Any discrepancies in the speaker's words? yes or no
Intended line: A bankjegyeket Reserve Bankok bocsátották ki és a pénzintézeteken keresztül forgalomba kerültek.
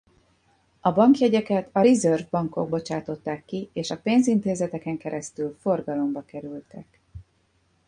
yes